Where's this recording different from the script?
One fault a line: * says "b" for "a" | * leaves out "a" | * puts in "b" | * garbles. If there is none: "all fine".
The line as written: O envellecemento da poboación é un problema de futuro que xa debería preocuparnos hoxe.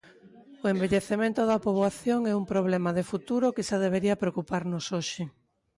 all fine